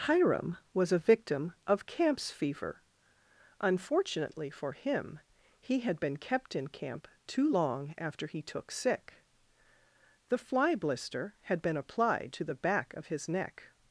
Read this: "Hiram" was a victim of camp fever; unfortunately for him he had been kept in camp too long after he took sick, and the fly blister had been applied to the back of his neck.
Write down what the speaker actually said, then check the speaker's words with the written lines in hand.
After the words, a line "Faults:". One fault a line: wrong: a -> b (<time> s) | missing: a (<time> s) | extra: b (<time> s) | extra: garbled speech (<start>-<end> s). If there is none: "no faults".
"Hiram" was a victim of camps fever; unfortunately for him he had been kept in camp too long after he took sick, the fly blister had been applied to the back of his neck.
Faults:
wrong: camp -> camps (1.9 s)
missing: and (9.1 s)